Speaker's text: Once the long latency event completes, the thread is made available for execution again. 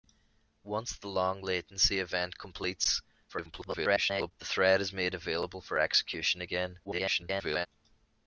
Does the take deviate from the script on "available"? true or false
false